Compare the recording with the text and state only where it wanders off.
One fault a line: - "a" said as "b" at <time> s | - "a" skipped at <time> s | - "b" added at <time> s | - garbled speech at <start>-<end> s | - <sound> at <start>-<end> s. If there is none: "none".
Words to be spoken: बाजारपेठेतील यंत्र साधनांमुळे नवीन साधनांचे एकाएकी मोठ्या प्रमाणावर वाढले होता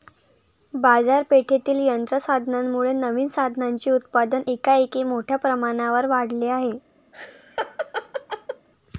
- "उत्पादन" added at 3.9 s
- "होता" said as "आहे" at 6.5 s
- laugh at 7.1-8.7 s